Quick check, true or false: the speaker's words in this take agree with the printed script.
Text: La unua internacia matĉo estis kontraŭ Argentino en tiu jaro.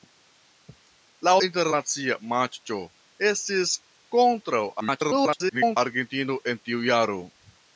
false